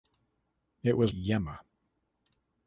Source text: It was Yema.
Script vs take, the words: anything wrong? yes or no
no